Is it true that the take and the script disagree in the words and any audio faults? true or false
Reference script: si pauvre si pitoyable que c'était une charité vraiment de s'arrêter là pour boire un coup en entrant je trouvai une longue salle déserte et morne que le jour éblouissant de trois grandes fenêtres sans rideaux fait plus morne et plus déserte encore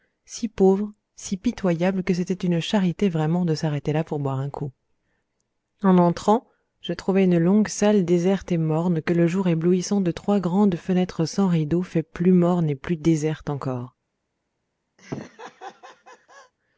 true